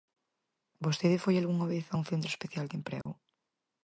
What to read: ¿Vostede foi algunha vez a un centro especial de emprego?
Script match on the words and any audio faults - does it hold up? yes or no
no